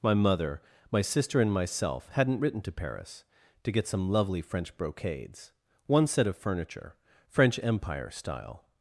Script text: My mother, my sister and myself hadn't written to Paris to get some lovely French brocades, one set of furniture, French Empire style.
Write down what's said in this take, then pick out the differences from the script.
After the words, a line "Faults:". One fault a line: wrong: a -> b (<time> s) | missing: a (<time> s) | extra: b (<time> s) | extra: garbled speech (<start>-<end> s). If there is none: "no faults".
My mother, my sister and myself hadn't written to Paris to get some lovely French brocades, one set of furniture, French Empire style.
Faults:
no faults